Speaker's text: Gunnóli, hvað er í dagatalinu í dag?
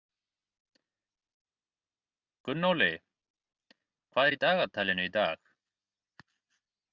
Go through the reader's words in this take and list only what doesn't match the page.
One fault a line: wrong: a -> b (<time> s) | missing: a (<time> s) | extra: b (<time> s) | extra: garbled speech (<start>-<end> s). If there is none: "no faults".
no faults